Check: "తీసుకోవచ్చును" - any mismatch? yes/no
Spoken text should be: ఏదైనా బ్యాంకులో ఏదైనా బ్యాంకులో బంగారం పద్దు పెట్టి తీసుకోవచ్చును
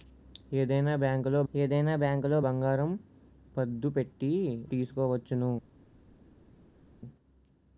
no